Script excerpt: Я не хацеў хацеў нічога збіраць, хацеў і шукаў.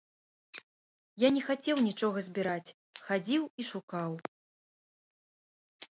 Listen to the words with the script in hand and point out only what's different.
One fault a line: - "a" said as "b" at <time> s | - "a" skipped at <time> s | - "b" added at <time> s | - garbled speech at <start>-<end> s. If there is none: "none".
- "хацеў" skipped at 1.8 s
- "хацеў" said as "хадзіў" at 3.0 s